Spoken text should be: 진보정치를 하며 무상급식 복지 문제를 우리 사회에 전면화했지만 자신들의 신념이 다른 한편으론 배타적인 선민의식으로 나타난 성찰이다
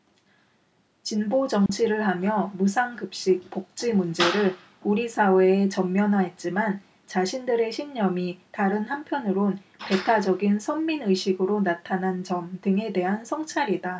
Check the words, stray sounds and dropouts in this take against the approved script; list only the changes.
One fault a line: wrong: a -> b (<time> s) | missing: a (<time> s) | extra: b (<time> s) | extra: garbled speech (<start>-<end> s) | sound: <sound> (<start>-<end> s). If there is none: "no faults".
sound: dropout (1.7-1.7 s)
extra: 점 등에 대한 (12.2 s)